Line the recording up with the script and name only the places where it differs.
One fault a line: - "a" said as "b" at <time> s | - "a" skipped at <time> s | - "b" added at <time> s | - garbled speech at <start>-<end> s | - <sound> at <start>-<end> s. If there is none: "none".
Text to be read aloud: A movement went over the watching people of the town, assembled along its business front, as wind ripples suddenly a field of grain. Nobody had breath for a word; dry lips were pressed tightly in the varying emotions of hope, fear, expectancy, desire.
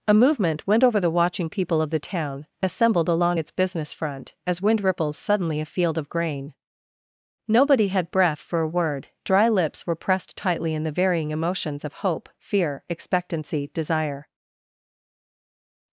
none